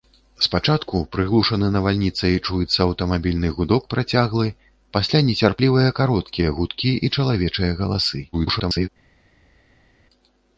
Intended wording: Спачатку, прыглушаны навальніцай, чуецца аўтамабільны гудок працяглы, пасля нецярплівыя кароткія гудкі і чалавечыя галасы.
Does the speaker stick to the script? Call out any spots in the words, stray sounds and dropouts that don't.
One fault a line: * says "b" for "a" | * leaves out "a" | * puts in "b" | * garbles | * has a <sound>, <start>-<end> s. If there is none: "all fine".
* garbles